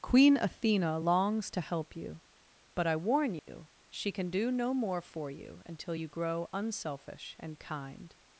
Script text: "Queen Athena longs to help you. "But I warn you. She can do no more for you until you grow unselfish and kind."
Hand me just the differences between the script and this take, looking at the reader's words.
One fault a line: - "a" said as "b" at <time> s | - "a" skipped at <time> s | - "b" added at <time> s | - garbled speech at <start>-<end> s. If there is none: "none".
none